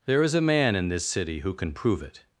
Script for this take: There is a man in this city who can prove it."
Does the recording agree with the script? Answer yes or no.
yes